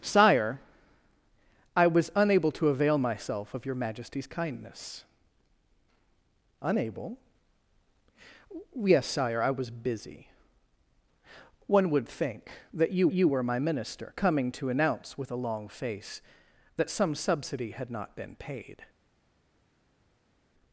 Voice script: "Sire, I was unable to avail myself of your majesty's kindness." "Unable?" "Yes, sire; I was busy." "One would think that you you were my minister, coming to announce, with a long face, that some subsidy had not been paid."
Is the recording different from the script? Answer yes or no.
no